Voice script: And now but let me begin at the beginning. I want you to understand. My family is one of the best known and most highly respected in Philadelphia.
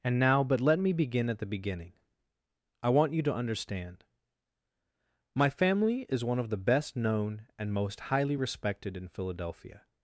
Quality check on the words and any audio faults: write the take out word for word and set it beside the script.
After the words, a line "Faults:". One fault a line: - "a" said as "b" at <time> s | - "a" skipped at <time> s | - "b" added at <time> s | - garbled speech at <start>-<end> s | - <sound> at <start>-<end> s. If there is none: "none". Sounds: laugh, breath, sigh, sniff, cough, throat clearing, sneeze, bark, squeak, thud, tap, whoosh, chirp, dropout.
And now but let me begin at the beginning. I want you to understand. My family is one of the best known and most highly respected in Philadelphia.
Faults:
none